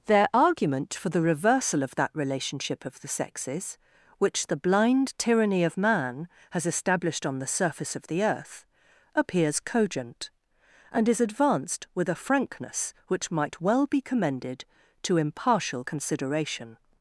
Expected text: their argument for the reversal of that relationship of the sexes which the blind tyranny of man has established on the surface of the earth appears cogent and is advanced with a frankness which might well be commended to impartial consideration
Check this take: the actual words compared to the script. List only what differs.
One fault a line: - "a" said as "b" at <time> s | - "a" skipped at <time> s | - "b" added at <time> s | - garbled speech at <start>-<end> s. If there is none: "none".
none